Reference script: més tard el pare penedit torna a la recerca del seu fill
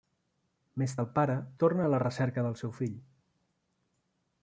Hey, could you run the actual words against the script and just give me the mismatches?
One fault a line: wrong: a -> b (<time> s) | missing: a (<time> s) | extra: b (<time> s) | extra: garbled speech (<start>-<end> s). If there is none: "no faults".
missing: tard (0.9 s)
missing: penedit (1.4 s)